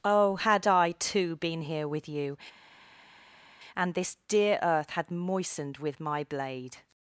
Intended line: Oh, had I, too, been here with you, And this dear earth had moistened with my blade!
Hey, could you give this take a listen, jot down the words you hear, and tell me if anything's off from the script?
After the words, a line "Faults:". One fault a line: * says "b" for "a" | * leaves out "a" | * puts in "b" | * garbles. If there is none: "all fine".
Oh, had I, too, been here with you, And this dear earth had moistened with my blade!
Faults:
all fine